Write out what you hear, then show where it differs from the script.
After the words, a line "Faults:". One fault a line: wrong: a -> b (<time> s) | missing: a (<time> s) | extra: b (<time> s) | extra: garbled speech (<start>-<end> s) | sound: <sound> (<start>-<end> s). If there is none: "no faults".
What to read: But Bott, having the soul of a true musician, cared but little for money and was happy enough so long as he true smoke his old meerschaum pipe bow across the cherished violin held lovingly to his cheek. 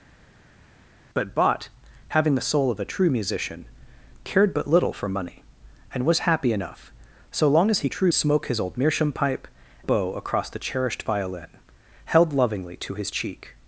But Bott, having the soul of a true musician, cared but little for money and was happy enough so long as he true smoke his old meerschaum pipe bow across the cherished violin held lovingly to his cheek.
Faults:
no faults